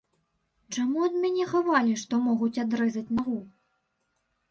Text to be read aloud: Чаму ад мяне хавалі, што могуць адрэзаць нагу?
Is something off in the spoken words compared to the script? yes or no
no